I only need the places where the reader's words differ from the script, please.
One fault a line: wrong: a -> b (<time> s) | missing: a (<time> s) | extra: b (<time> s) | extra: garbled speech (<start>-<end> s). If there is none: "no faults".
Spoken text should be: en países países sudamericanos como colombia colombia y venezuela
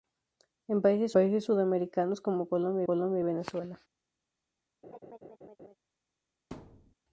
no faults